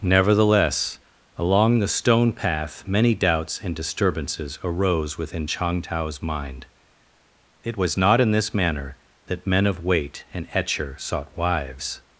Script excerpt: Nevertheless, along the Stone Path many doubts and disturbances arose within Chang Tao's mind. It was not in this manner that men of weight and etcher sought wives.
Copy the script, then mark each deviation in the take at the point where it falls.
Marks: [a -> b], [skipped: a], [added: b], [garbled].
Nevertheless, along the Stone Path many doubts and disturbances arose within Chang Tao's mind. It was not in this manner that men of weight and etcher sought wives.